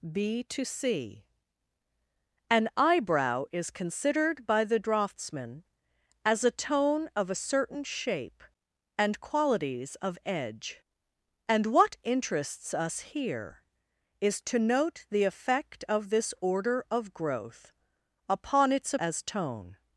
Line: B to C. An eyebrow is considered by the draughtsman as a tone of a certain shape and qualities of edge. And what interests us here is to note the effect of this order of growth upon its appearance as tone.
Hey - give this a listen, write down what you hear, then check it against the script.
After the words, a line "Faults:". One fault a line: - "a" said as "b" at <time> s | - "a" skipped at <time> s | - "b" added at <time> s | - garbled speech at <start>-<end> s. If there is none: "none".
B to C. An eyebrow is considered by the draughtsman as a tone of a certain shape and qualities of edge. And what interests us here is to note the effect of this order of growth upon its as tone.
Faults:
- "appearance" skipped at 18.9 s